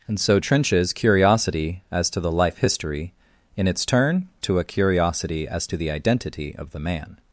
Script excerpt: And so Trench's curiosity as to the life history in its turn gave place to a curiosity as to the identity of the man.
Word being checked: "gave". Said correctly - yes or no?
no